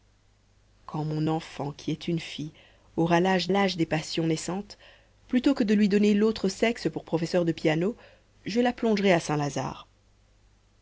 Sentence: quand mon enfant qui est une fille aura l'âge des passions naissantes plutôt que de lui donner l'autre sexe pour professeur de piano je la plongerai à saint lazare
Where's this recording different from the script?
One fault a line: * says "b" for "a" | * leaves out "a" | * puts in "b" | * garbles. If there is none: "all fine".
* puts in "l'âge"